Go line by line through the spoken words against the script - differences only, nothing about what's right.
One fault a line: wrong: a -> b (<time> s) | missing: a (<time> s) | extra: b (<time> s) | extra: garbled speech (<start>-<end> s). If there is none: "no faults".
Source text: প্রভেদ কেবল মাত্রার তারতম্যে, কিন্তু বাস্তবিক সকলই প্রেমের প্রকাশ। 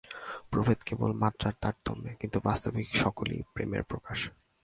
no faults